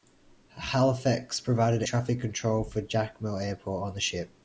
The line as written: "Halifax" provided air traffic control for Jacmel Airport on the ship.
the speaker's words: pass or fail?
fail